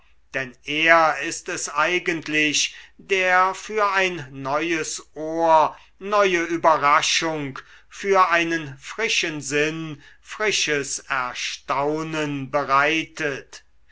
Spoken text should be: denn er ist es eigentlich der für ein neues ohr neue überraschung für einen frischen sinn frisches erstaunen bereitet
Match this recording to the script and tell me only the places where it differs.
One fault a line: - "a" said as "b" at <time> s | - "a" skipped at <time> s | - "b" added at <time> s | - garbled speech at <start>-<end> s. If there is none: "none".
none